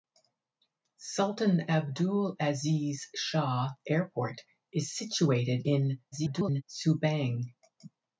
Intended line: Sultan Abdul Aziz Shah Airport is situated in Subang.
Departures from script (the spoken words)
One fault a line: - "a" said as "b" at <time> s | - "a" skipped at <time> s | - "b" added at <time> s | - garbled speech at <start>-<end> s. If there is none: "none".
- garbled speech at 6.1-6.6 s